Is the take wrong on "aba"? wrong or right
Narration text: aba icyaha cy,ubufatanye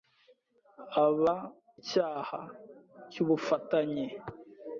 right